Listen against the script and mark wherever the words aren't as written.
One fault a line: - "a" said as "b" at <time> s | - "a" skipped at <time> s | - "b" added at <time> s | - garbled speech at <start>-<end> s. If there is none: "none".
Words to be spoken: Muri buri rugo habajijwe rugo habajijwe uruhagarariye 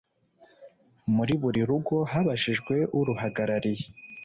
- "rugo habajijwe" skipped at 2.8 s